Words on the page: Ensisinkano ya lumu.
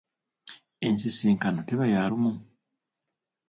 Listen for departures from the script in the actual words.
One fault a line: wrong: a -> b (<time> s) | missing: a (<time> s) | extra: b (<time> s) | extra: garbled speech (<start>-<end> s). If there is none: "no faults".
extra: teba (1.7 s)